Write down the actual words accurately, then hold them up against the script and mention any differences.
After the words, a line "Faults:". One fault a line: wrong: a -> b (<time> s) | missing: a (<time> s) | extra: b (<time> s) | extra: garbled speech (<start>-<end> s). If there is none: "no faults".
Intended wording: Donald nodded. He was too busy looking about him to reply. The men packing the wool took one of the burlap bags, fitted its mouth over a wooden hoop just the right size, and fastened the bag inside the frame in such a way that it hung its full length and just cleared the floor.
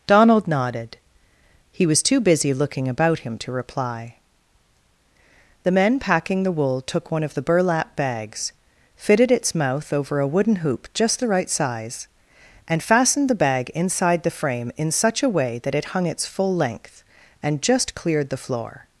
Donald nodded. He was too busy looking about him to reply. The men packing the wool took one of the burlap bags, fitted its mouth over a wooden hoop just the right size, and fastened the bag inside the frame in such a way that it hung its full length and just cleared the floor.
Faults:
no faults